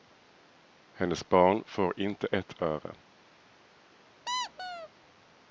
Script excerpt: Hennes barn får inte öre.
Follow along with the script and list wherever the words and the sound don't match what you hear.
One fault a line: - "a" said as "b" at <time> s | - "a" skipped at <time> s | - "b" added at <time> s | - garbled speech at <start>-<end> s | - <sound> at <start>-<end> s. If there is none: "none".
- "ett" added at 2.3 s
- squeak at 4.3-4.9 s